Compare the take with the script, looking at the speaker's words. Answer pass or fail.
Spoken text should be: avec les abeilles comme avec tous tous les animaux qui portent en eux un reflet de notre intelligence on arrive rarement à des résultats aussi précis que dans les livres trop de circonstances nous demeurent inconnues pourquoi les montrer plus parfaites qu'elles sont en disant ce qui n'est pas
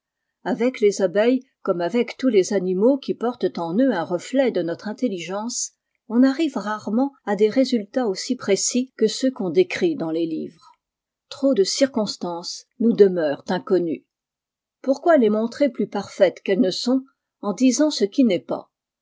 fail